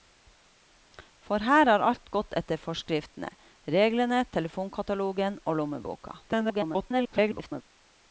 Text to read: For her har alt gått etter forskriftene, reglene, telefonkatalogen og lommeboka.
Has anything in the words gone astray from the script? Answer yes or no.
yes